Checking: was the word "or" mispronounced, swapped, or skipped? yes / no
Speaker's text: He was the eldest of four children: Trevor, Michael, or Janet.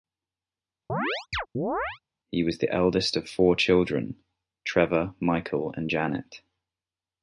yes